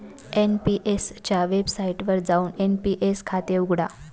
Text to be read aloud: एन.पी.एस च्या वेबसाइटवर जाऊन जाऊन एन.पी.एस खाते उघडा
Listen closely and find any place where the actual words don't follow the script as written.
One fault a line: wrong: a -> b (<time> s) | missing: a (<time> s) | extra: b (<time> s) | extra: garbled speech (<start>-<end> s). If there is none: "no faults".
missing: जाऊन (2.5 s)